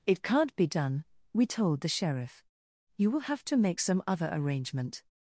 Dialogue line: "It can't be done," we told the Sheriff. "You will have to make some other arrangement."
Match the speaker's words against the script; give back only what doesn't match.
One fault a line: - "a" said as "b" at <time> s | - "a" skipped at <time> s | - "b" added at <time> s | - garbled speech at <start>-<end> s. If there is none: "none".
none